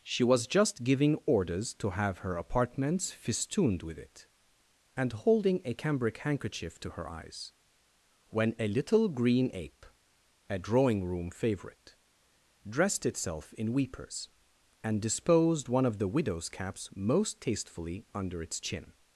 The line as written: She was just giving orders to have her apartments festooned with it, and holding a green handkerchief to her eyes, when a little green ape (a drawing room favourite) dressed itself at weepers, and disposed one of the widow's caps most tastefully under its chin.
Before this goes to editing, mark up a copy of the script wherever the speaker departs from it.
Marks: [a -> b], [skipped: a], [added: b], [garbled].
She was just giving orders to have her apartments festooned with it, and holding a [green -> cambric] handkerchief to her eyes, when a little green ape (a drawing room favourite) dressed itself [at -> in] weepers, and disposed one of the widow's caps most tastefully under its chin.